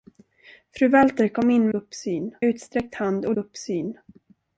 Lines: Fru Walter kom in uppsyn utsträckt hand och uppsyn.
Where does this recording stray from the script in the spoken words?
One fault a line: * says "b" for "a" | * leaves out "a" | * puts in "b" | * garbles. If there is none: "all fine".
all fine